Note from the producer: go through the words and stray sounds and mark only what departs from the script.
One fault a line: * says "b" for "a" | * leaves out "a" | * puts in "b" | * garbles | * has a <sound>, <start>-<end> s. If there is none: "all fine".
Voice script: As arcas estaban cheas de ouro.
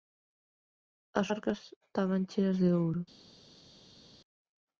all fine